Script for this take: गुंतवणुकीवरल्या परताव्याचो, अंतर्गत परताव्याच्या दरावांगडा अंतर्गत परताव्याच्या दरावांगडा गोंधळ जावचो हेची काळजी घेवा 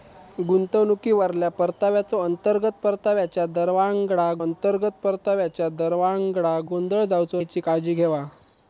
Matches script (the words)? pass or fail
pass